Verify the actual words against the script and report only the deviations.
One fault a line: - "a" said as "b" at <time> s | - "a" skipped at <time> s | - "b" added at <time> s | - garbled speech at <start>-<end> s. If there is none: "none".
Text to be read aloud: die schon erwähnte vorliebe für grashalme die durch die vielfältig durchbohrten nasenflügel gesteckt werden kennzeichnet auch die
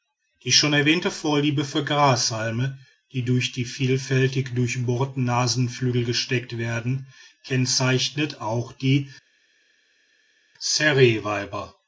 none